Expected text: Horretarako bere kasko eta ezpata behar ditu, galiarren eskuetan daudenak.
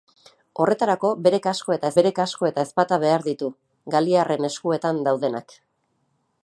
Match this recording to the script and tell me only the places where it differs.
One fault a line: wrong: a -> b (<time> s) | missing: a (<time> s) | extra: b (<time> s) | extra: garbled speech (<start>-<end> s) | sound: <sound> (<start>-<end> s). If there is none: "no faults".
extra: bere kasko eta (2.0 s)